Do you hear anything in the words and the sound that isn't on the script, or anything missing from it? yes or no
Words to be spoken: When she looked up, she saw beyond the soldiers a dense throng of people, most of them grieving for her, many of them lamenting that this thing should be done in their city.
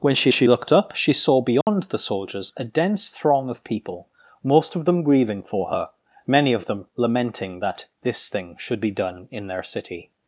yes